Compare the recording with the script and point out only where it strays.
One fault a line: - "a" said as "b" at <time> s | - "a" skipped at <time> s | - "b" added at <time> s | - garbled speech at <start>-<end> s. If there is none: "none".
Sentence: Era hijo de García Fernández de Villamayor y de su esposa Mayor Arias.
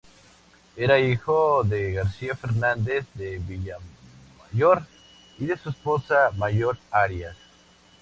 none